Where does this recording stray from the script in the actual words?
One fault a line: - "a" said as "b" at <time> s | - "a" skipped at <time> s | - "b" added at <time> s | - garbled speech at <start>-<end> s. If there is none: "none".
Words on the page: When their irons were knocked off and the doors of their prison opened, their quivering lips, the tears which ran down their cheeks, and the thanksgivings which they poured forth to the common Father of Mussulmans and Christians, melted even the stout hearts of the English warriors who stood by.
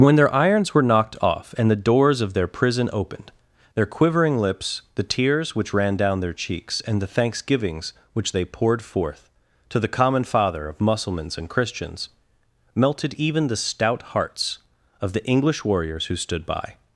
none